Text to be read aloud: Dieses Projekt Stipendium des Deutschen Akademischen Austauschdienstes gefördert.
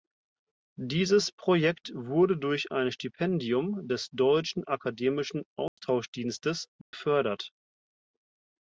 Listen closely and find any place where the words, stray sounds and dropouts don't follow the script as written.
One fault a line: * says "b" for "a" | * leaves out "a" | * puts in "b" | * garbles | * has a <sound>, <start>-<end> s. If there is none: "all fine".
* puts in "wurde durch ein"
* has a dropout, 5.7-5.8 s
* has a dropout, 6.8-6.9 s